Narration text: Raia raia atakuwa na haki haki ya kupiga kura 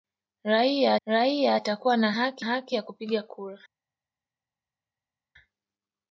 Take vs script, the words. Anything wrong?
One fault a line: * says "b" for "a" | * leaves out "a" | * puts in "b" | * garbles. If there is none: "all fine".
all fine